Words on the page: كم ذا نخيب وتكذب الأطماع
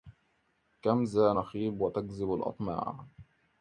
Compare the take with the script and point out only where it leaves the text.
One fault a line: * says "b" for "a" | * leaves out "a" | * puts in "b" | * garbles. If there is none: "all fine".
all fine